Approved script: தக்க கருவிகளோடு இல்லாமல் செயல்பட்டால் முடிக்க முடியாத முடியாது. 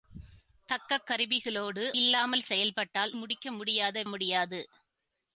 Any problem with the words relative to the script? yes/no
no